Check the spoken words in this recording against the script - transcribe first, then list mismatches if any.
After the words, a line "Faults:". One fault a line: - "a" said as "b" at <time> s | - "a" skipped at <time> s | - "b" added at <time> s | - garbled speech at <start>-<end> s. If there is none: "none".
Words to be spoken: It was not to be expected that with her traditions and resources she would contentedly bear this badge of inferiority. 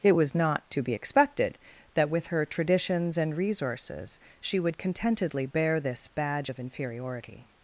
It was not to be expected that with her traditions and resources she would contentedly bear this badge of inferiority.
Faults:
none